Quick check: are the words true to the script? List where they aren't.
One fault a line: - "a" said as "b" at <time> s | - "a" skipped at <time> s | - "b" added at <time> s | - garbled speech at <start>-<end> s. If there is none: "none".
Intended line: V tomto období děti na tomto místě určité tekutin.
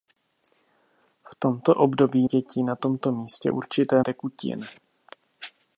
none